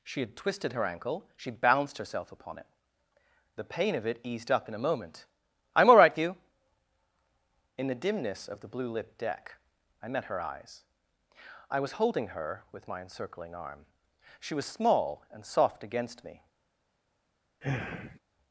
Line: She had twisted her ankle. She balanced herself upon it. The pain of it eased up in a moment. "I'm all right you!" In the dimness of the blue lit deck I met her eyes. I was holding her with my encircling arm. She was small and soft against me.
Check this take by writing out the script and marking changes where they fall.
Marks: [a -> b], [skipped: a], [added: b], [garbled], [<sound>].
She had twisted her ankle. She balanced herself upon it. The pain of it eased up in a moment. "I'm all right you!" In the dimness of the blue lit deck I met her eyes. I was holding her with my encircling arm. She was small and soft against me. [sigh]